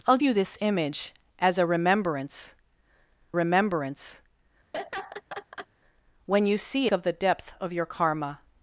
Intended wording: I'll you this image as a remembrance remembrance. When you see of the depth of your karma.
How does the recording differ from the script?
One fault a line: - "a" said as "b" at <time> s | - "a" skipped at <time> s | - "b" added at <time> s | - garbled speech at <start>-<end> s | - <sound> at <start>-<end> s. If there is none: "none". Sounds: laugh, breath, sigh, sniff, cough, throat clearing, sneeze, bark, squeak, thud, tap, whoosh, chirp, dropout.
- laugh at 4.7-5.7 s